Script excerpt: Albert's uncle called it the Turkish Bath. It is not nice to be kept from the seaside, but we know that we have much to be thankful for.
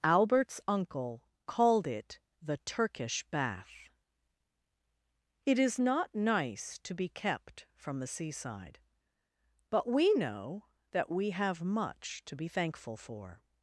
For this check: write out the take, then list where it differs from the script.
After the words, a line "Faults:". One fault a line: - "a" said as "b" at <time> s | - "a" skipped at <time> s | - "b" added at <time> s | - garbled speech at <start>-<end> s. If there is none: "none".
Albert's uncle called it the Turkish Bath. It is not nice to be kept from the seaside, but we know that we have much to be thankful for.
Faults:
none